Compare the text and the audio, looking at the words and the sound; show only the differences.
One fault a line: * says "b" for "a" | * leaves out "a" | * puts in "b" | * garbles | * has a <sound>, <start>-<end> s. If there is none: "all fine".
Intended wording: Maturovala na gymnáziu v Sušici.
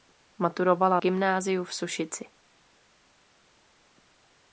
* leaves out "na"